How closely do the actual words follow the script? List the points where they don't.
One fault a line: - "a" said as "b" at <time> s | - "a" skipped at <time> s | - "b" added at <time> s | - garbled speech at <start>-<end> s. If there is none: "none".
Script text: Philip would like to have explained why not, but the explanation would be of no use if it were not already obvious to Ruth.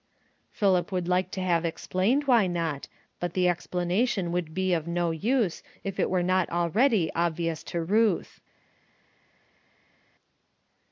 none